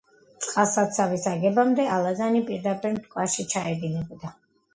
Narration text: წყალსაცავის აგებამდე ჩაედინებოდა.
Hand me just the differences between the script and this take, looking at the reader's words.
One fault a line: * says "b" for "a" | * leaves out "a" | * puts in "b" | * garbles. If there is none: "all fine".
* puts in "ალაზანი პირდაპირ მტკვარში"